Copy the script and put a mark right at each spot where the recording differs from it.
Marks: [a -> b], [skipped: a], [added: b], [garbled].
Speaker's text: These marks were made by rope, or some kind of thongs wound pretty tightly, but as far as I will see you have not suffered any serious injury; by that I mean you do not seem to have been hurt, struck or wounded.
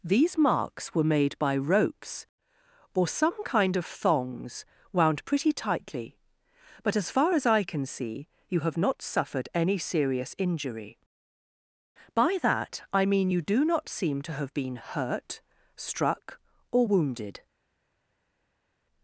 These marks were made by [rope, -> ropes] or some kind of thongs wound pretty tightly, but as far as I [will -> can] see you have not suffered any serious injury; by that I mean you do not seem to have been hurt, struck or wounded.